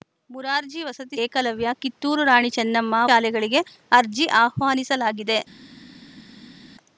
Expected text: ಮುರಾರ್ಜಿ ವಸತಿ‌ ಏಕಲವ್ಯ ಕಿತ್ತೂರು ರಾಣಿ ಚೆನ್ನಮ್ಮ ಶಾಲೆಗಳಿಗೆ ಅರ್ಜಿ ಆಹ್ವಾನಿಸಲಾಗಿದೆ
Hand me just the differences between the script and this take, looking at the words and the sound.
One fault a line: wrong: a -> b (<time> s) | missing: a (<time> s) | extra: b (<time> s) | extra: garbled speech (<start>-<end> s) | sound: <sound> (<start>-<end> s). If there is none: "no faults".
no faults